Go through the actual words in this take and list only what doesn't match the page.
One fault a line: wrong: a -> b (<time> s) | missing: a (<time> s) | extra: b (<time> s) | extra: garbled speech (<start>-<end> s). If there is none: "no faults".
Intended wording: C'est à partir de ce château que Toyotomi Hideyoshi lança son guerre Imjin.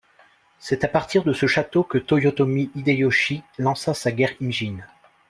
wrong: son -> sa (3.9 s)